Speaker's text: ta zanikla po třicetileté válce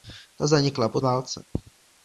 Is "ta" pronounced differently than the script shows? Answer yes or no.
no